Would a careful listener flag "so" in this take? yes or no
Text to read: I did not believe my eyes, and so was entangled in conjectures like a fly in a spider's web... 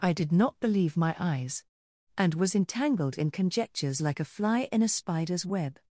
yes